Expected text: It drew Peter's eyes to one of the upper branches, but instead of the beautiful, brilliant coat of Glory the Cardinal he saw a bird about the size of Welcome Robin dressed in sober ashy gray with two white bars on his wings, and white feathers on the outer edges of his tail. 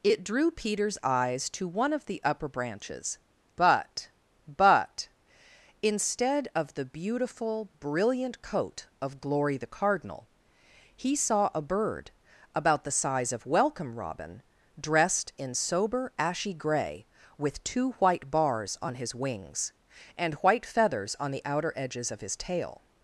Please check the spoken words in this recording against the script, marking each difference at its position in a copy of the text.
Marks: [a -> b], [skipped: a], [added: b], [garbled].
It drew Peter's eyes to one of the upper branches, but [added: but] instead of the beautiful, brilliant coat of Glory the Cardinal he saw a bird about the size of Welcome Robin dressed in sober ashy gray with two white bars on his wings, and white feathers on the outer edges of his tail.